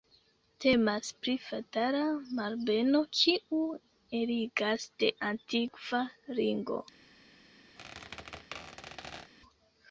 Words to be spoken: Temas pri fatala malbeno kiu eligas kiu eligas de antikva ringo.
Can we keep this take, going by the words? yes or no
no